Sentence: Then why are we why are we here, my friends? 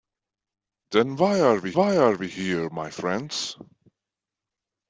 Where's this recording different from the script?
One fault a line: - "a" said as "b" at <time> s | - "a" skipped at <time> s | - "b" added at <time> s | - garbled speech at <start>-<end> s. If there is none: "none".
none